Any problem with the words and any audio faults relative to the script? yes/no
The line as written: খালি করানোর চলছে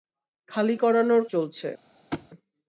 yes